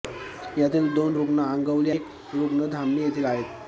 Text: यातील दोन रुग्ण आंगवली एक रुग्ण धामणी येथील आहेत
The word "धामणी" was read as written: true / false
true